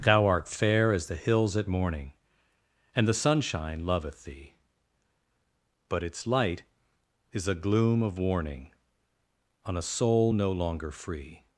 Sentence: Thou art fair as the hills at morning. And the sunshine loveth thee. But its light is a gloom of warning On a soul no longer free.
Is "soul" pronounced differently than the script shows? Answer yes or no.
no